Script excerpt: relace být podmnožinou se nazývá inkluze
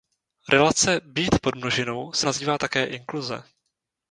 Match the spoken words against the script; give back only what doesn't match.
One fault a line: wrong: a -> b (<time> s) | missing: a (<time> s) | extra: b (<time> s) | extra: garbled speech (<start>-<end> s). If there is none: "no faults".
extra: také (2.6 s)